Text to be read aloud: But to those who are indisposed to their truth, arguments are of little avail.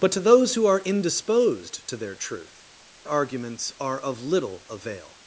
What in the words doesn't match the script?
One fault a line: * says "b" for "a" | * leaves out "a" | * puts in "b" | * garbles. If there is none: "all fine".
all fine